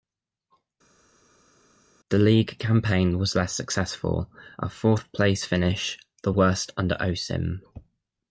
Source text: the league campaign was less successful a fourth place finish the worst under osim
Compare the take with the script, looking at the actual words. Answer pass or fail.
pass